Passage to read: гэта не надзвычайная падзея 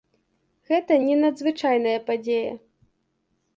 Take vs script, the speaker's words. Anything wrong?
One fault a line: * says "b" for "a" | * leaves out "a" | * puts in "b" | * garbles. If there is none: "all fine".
all fine